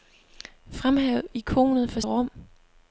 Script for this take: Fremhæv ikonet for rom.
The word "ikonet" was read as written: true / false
true